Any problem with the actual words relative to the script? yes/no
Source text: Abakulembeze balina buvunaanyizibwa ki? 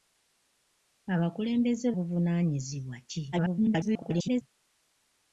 yes